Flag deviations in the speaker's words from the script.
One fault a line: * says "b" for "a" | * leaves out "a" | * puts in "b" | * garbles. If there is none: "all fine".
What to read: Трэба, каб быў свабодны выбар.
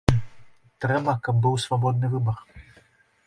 all fine